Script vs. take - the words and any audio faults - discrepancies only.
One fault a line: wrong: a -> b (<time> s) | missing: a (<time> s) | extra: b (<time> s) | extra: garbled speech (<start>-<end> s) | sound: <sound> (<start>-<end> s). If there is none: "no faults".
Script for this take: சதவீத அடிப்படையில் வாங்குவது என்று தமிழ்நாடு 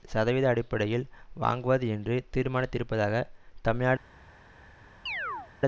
extra: தீர்மானித்திருப்பதாக (2.4 s)
sound: chirp (5.1-5.5 s)